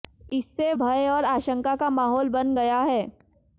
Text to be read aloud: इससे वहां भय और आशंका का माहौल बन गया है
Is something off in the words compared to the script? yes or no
yes